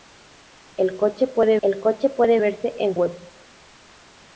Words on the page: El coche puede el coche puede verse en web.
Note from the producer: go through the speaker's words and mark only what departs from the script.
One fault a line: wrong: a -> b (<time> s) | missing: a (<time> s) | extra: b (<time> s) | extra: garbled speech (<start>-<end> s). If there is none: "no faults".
no faults